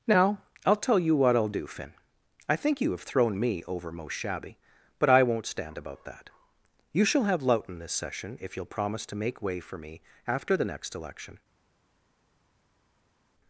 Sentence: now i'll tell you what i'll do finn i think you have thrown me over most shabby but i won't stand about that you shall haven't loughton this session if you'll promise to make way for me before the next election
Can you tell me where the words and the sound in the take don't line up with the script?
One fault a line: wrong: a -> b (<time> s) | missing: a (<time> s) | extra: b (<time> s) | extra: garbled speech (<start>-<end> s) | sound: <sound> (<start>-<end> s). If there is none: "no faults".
wrong: haven't -> have (7.2 s)
wrong: before -> after (10.3 s)